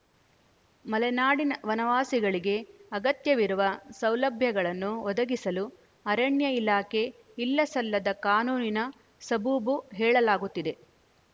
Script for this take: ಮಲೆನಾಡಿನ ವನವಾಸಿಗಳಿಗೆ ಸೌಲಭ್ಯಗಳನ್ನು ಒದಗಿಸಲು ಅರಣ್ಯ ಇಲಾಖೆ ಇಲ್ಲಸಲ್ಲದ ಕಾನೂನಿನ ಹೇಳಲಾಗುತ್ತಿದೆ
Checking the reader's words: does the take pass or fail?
fail